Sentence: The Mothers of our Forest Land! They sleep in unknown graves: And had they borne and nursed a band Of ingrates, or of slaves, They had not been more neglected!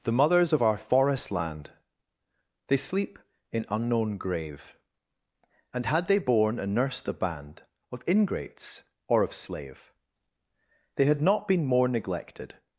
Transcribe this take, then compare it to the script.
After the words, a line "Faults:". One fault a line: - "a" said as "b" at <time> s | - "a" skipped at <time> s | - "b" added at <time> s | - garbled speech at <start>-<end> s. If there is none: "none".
The Mothers of our Forest Land! They sleep in unknown grave: And had they borne and nursed a band Of ingrates, or of slave, They had not been more neglected!
Faults:
- "graves" said as "grave" at 4.2 s
- "slaves" said as "slave" at 9.3 s